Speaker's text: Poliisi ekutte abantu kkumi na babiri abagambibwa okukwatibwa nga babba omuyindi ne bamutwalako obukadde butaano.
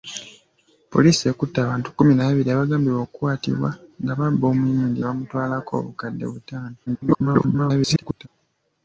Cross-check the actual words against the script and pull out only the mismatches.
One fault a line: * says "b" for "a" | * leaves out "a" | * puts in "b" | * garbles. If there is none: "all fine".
* leaves out "ne"
* garbles